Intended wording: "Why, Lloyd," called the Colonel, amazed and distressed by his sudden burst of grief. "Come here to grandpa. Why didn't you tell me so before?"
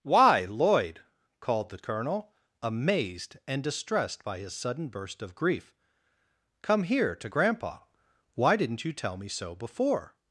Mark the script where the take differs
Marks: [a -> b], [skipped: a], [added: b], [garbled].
"Why, Lloyd," called the Colonel, amazed and distressed by his sudden burst of grief. "Come here to grandpa. Why didn't you tell me so before?"